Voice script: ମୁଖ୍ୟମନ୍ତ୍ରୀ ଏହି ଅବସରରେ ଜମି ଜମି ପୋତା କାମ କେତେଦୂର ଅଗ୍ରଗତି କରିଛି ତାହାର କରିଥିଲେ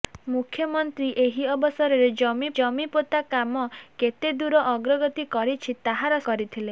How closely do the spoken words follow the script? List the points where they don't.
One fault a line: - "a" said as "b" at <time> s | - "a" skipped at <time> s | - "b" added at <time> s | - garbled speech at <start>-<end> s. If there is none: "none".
none